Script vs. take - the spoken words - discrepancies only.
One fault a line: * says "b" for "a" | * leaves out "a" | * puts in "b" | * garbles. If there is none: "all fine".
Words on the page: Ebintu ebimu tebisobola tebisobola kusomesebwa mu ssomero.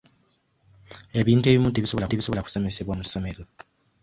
all fine